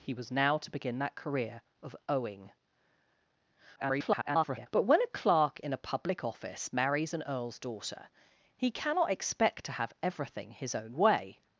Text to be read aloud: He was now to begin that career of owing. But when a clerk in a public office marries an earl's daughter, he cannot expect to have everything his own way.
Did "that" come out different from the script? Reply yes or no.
no